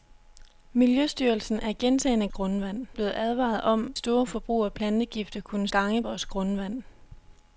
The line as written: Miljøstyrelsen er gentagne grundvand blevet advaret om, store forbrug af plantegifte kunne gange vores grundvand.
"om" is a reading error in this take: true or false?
false